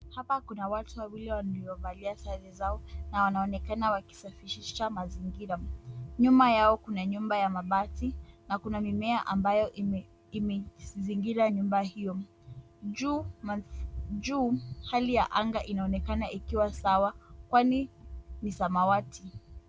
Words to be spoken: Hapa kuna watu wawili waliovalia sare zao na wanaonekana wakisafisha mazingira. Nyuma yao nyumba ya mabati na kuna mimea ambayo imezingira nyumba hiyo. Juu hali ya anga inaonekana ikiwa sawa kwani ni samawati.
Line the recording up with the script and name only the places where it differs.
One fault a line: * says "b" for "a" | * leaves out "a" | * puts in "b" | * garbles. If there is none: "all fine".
* puts in "kuna"